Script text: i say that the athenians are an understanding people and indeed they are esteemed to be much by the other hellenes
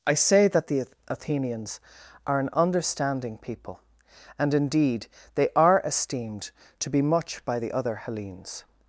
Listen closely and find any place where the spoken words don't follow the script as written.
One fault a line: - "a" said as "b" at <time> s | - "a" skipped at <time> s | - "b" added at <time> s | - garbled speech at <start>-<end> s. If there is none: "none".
none